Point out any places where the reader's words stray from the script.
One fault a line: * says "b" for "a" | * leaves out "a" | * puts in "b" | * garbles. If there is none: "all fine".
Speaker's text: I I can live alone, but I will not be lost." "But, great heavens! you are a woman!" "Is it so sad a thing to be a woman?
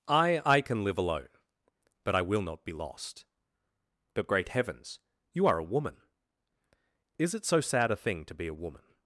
all fine